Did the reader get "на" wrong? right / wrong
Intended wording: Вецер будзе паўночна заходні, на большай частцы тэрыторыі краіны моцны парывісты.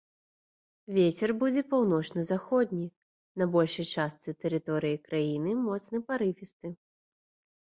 right